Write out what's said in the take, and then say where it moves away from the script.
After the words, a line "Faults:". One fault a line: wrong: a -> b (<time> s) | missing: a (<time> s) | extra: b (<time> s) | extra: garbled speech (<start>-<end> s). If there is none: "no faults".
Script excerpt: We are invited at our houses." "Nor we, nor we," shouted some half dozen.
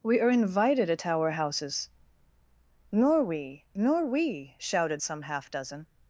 We are invited at our houses." "Nor we, nor we," shouted some half dozen.
Faults:
no faults